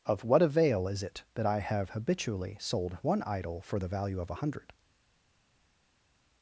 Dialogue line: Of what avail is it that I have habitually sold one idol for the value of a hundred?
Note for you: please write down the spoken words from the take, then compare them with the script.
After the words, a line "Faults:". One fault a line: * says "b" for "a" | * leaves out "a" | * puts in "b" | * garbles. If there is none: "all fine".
Of what avail is it that I have habitually sold one idol for the value of a hundred?
Faults:
all fine